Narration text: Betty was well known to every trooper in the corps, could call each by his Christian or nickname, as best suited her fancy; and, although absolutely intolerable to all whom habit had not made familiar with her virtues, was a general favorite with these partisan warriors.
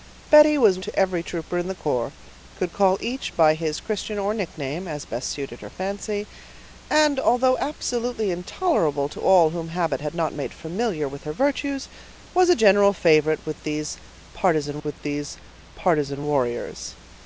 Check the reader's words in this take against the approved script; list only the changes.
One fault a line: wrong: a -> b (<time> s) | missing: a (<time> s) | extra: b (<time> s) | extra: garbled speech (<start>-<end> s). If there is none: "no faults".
missing: well known (0.8 s)
extra: with these partisan (14.8 s)